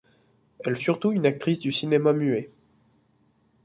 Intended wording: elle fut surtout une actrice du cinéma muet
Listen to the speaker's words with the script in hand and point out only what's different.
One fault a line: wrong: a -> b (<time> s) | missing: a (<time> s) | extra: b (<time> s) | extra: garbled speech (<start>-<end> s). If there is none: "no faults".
missing: fut (0.8 s)